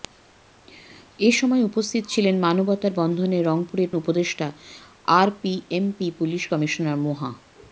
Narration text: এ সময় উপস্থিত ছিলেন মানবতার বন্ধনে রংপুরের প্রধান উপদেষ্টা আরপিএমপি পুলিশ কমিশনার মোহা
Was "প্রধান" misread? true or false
true